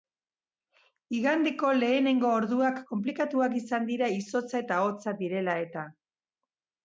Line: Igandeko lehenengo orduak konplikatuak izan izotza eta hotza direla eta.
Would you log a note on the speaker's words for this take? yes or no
yes